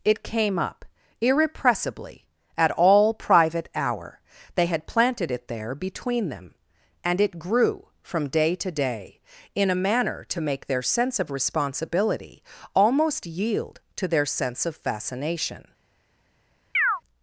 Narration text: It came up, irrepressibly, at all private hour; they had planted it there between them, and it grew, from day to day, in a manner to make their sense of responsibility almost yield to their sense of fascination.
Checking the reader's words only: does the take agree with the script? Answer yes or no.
yes